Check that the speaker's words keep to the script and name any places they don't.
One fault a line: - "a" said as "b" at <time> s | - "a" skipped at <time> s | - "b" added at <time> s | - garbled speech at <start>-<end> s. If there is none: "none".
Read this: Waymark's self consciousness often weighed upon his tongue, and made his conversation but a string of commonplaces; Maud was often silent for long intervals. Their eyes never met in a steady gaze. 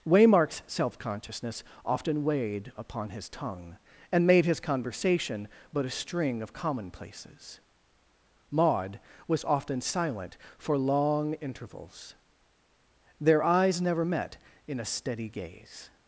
none